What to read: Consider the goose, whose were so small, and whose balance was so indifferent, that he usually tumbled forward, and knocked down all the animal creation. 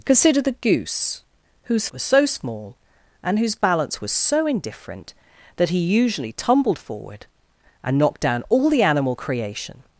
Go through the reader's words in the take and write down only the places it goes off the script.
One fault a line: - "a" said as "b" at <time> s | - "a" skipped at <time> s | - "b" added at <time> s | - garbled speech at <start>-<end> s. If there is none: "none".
none